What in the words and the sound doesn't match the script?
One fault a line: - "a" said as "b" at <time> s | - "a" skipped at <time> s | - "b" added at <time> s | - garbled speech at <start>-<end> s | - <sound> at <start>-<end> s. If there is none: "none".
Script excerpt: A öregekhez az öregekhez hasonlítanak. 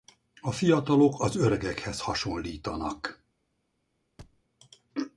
- "öregekhez" said as "fiatalok" at 0.5 s
- thud at 4.2-4.4 s